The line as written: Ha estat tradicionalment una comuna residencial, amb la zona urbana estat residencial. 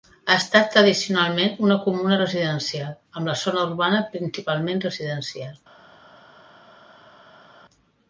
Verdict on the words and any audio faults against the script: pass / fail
fail